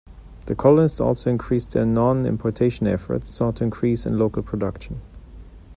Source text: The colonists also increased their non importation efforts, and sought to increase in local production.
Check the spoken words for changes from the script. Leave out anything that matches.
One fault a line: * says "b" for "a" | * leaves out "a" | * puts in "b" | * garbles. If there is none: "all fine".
* leaves out "and"